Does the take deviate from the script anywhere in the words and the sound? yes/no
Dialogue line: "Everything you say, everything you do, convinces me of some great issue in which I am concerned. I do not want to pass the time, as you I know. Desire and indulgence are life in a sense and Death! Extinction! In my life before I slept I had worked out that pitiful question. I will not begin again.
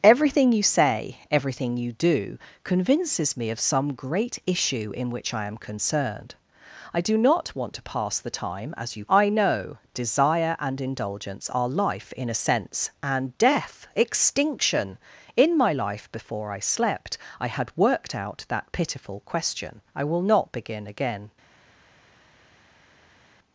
no